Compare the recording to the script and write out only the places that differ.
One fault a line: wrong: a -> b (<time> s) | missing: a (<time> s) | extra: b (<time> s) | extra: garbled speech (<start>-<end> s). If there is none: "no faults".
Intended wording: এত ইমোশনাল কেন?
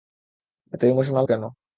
no faults